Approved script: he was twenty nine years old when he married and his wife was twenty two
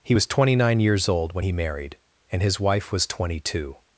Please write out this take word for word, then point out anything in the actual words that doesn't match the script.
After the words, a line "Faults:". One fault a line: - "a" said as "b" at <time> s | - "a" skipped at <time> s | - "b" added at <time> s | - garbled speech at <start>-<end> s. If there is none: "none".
he was twenty nine years old when he married and his wife was twenty two
Faults:
none